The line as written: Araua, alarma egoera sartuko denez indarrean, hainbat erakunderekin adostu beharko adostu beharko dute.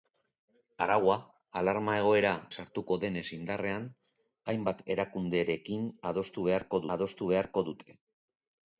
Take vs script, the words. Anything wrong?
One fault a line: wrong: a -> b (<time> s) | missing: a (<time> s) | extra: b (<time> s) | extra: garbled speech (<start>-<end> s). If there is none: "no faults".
no faults